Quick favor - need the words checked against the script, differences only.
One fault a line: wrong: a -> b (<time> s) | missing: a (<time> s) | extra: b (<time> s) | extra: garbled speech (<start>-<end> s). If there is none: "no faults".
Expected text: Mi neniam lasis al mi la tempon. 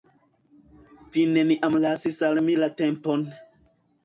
wrong: Mi -> Vi (1.1 s)